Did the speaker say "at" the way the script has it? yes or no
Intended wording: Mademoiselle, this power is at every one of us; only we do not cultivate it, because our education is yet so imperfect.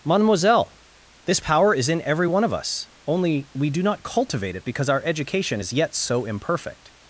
no